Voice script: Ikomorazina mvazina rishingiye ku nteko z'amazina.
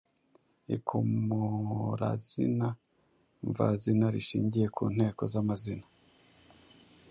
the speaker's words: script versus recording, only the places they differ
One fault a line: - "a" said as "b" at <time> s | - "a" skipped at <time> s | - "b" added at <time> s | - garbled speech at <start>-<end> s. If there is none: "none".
none